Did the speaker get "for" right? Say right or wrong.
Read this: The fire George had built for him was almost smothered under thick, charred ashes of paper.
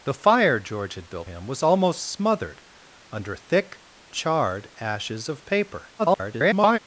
wrong